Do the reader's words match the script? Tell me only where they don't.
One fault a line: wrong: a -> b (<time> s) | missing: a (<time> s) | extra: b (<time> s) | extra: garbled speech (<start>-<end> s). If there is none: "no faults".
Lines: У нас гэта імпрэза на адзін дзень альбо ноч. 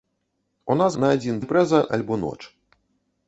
missing: гэта імпрэза (0.9 s)
wrong: дзень -> імпрэза (1.4 s)